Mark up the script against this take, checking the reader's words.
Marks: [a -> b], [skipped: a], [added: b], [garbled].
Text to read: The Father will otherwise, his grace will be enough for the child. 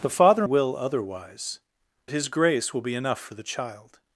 The Father will otherwise, his grace will be enough for the child.